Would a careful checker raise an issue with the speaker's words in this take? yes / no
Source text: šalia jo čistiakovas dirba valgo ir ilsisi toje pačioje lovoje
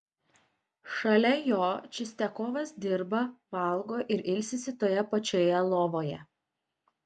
no